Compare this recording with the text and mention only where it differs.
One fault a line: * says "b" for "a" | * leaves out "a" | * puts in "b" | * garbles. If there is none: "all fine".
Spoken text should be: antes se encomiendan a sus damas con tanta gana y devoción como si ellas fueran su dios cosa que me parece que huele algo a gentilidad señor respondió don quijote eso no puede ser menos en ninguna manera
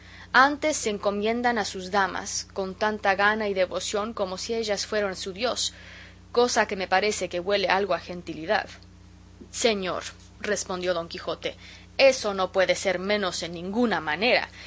all fine